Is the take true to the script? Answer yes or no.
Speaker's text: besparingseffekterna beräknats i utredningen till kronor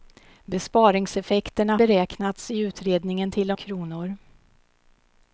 yes